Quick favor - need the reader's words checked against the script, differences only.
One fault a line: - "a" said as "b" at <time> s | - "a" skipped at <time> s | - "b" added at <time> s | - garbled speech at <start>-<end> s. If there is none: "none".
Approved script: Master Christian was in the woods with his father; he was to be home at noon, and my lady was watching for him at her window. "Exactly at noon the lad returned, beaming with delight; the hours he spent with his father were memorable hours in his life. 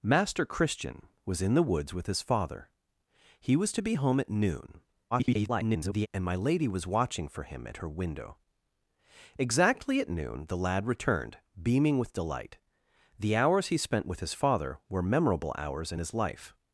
- garbled speech at 5.1-6.1 s